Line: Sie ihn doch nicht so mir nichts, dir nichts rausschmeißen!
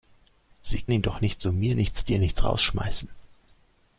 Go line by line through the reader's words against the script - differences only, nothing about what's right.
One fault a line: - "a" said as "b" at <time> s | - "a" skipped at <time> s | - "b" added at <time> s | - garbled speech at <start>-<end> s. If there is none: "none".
none